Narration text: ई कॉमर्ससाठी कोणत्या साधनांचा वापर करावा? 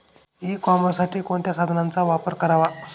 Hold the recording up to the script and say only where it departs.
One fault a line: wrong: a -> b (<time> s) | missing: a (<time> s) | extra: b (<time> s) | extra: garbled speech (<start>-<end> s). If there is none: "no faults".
no faults